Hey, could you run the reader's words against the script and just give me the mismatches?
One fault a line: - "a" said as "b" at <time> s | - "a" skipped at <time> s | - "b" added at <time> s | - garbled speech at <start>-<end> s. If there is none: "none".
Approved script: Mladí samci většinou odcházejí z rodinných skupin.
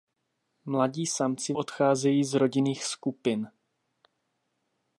- "většinou" skipped at 1.5 s